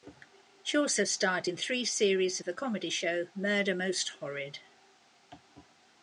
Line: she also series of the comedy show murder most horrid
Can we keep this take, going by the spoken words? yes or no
no